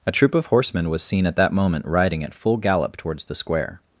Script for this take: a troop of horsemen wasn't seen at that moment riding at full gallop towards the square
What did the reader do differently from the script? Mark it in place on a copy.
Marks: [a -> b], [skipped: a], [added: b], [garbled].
a troop of horsemen [wasn't -> was] seen at that moment riding at full gallop towards the square